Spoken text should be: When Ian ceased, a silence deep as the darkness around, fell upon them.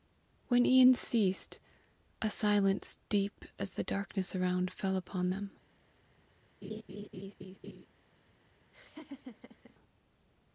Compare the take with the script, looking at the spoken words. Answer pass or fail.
pass